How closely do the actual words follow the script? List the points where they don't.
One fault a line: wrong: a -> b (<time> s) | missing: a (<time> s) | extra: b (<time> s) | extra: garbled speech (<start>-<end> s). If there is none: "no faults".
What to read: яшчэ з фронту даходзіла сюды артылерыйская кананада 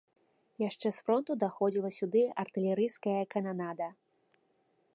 no faults